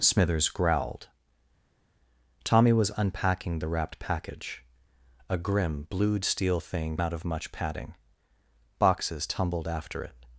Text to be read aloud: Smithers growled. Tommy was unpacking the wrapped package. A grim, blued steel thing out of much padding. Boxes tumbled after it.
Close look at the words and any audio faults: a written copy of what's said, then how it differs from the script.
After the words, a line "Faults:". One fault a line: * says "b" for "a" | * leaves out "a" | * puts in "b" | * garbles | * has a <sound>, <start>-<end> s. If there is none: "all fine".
Smithers growled. Tommy was unpacking the wrapped package. A grim, blued steel thing out of much padding. Boxes tumbled after it.
Faults:
all fine